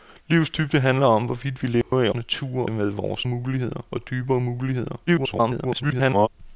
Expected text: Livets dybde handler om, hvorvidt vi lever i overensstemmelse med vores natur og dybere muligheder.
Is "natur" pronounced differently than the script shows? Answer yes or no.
yes